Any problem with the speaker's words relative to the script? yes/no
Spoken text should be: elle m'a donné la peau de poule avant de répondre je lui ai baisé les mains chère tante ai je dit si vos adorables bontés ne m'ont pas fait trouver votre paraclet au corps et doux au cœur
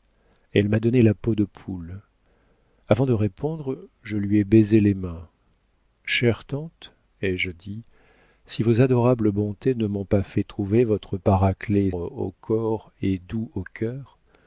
no